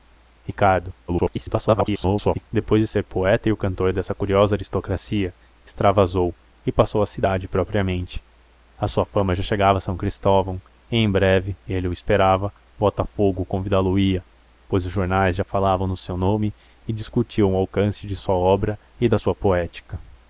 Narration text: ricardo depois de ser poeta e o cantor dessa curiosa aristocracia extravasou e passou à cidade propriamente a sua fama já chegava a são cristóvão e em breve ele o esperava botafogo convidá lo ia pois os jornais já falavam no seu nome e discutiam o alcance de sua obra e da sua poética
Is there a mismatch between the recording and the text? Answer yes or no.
yes